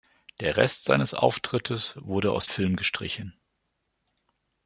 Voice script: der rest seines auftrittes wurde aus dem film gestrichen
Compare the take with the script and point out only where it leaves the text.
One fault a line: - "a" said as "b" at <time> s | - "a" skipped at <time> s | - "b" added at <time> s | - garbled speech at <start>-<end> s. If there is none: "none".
- "dem" skipped at 2.5 s